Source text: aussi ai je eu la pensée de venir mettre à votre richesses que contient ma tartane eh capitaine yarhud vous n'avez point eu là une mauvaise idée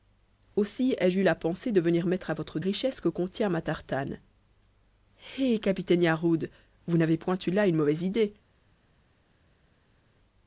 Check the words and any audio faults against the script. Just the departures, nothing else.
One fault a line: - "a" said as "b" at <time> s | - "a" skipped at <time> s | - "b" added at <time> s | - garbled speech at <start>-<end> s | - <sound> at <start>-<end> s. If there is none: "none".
none